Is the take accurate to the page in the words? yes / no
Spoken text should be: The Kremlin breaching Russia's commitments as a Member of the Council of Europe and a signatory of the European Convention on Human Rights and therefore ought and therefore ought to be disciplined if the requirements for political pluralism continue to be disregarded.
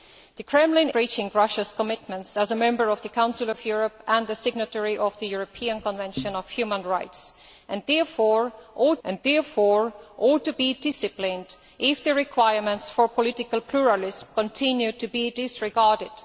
yes